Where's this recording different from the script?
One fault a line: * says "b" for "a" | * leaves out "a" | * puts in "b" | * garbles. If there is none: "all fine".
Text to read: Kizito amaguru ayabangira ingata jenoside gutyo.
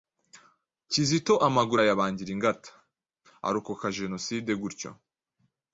* puts in "arokoka"